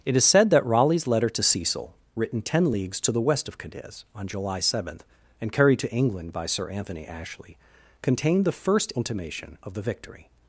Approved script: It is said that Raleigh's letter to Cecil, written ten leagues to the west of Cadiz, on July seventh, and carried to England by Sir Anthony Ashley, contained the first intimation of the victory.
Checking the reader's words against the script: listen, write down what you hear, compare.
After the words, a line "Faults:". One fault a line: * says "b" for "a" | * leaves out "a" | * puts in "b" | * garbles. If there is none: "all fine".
It is said that Raleigh's letter to Cecil, written ten leagues to the west of Cadiz, on July seventh, and carried to England by Sir Anthony Ashley, contained the first intimation of the victory.
Faults:
all fine